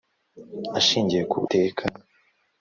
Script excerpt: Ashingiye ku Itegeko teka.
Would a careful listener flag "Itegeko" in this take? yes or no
yes